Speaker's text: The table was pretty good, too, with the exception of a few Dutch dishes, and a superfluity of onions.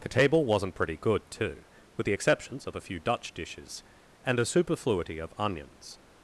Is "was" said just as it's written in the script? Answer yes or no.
no